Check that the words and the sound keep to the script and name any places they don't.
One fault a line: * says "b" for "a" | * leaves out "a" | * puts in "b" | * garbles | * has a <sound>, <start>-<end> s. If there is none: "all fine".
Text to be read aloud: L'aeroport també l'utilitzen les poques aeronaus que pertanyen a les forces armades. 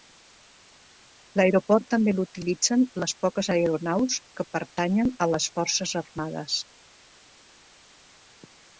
all fine